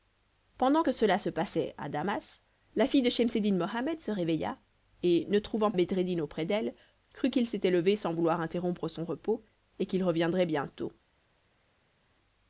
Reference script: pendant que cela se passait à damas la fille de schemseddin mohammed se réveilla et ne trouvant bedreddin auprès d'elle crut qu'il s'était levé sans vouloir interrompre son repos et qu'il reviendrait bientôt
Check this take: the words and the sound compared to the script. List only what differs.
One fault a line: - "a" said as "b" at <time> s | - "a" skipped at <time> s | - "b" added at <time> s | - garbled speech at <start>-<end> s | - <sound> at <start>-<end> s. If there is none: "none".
none